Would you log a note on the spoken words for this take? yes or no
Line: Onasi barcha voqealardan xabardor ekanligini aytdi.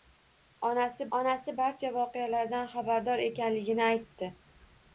yes